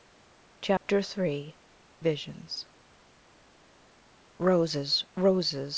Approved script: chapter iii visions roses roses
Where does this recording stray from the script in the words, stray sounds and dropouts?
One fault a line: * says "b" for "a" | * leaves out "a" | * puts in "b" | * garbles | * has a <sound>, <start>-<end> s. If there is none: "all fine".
* has a dropout, 0.8-0.8 s